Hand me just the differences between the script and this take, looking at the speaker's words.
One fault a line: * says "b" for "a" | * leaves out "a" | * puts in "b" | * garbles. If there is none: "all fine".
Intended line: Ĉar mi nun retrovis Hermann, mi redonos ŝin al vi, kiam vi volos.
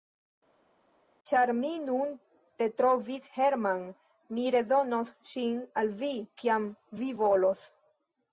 all fine